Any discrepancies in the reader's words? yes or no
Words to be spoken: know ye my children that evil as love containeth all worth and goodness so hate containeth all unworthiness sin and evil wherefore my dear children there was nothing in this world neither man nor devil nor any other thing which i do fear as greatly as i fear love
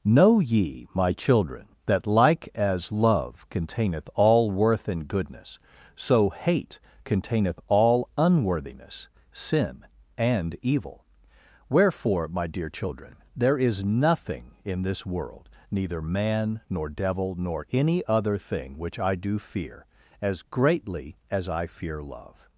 yes